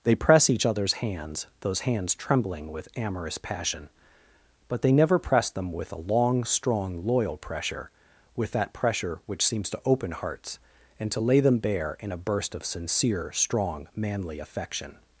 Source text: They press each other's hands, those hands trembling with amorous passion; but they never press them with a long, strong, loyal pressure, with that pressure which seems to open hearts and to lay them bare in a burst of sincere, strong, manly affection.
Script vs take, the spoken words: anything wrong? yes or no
no